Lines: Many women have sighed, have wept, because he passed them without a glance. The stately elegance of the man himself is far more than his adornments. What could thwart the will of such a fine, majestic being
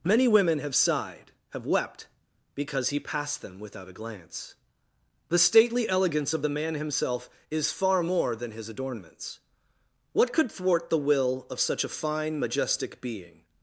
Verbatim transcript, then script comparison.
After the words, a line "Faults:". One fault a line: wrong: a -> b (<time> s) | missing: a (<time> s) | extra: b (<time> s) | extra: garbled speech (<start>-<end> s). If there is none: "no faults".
Many women have sighed, have wept, because he passed them without a glance. The stately elegance of the man himself is far more than his adornments. What could thwart the will of such a fine, majestic being
Faults:
no faults